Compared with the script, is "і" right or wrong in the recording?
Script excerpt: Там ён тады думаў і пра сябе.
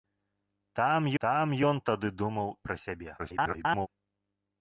wrong